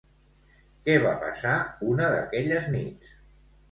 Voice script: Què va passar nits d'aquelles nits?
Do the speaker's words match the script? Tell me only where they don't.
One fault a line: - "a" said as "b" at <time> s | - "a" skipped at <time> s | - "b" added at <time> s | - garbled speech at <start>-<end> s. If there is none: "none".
- "nits" said as "una" at 1.9 s